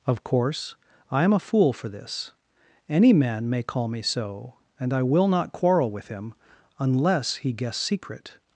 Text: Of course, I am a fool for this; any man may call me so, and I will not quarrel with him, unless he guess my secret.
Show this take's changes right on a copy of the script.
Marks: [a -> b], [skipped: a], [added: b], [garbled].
Of course, I am a fool for this; any man may call me so, and I will not quarrel with him, unless he guess [skipped: my] secret.